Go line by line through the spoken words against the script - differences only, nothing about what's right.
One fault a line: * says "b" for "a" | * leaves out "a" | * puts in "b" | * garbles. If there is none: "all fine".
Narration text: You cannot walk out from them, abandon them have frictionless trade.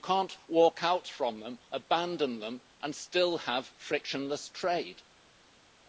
* puts in "and still"